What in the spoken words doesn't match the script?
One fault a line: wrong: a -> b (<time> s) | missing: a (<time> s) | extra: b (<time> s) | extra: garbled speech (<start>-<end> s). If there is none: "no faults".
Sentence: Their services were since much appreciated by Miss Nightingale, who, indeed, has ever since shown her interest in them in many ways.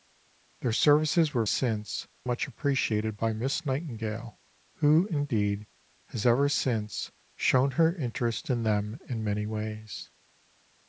no faults